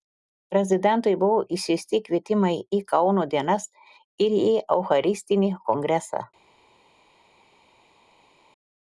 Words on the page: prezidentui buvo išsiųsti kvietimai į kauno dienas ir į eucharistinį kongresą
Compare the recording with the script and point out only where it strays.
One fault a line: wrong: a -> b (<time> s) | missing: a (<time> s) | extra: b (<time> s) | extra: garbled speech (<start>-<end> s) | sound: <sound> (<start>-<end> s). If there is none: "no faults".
no faults